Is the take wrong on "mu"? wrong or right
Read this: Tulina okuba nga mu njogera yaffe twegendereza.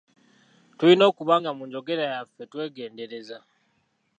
right